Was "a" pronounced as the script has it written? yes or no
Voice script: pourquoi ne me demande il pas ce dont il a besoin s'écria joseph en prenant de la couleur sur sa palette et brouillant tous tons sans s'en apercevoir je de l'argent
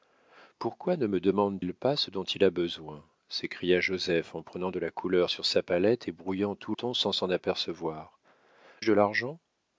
yes